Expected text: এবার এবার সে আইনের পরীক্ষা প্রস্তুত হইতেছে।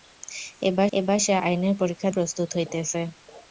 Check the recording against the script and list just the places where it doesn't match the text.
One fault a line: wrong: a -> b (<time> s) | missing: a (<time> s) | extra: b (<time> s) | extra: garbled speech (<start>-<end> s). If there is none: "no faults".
no faults